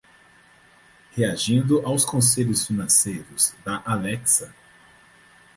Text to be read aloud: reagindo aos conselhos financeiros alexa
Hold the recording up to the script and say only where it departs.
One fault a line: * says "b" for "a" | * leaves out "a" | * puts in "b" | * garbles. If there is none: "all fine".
* puts in "da"